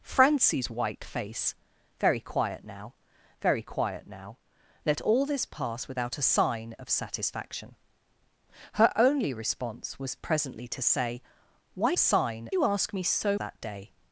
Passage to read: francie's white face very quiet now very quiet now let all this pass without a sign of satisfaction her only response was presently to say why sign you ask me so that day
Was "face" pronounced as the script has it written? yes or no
yes